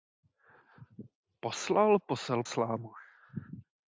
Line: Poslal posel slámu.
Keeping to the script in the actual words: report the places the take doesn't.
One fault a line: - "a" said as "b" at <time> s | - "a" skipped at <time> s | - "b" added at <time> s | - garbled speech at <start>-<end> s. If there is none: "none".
none